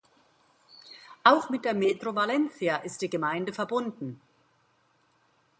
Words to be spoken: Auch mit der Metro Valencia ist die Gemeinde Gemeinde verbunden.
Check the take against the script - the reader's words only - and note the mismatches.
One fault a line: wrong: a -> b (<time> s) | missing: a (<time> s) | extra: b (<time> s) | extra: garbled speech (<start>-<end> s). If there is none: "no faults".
missing: Gemeinde (3.5 s)